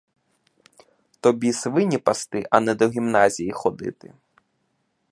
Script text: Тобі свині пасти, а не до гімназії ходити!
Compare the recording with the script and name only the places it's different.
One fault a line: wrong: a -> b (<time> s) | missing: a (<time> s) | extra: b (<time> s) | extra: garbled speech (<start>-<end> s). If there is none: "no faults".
no faults